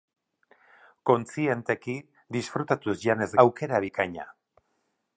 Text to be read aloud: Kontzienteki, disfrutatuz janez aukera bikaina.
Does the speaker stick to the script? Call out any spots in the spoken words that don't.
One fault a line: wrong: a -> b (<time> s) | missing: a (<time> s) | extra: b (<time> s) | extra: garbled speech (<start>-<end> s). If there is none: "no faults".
no faults